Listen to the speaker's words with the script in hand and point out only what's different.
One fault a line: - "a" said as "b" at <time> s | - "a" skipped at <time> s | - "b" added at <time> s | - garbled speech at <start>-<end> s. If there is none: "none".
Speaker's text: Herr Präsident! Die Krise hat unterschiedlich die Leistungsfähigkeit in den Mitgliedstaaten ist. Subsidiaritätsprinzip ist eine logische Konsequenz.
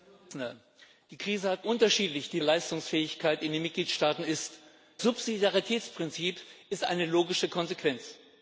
none